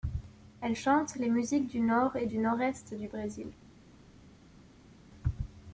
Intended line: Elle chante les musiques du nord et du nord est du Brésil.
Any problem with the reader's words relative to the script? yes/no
no